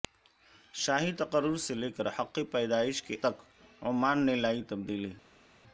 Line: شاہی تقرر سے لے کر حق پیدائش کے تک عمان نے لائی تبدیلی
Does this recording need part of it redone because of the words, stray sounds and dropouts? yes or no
no